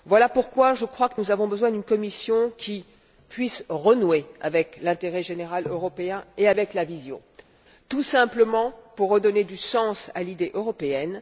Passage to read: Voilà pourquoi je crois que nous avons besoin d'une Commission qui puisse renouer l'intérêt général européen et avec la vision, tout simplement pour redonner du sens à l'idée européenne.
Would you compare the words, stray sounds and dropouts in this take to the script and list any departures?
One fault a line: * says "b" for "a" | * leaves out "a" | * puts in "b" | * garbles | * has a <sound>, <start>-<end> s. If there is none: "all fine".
* puts in "avec"